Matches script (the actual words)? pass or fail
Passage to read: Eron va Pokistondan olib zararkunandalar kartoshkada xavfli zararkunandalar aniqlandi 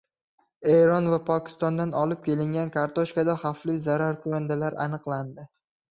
fail